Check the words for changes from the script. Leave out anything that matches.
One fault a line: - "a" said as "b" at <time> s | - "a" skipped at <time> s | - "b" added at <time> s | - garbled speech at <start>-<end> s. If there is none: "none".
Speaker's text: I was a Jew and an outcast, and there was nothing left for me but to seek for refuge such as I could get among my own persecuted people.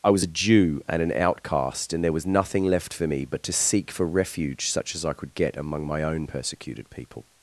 none